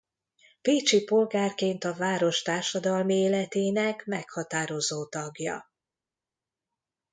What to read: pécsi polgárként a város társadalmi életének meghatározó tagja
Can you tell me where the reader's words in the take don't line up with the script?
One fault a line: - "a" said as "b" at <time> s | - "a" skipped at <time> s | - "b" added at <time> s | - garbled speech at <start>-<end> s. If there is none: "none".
none